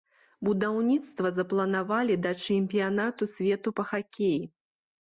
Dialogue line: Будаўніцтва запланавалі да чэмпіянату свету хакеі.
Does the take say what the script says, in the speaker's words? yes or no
no